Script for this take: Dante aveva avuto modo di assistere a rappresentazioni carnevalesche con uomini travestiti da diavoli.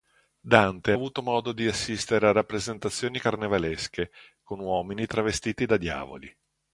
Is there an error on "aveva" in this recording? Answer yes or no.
yes